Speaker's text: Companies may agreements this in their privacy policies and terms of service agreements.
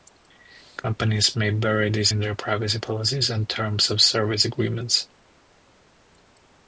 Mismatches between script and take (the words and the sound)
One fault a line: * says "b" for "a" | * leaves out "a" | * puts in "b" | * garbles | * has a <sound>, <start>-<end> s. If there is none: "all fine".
* says "bury" for "agreements"